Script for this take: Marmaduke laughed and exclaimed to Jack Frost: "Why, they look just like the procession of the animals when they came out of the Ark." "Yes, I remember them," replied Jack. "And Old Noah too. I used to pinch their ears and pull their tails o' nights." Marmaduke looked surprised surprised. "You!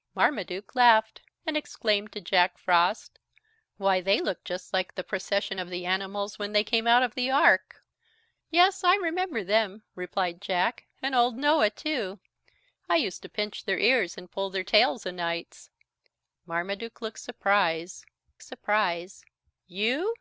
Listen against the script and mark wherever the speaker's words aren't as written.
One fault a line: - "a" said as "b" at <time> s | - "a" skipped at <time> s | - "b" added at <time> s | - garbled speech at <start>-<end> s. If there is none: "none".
none